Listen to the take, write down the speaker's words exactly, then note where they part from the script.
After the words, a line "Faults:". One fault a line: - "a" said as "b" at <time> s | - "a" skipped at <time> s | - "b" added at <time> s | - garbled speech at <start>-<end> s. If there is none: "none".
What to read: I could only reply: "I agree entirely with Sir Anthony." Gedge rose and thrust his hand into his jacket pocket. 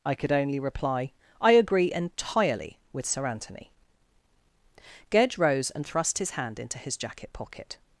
I could only reply: "I agree entirely with Sir Anthony." Gedge rose and thrust his hand into his jacket pocket.
Faults:
none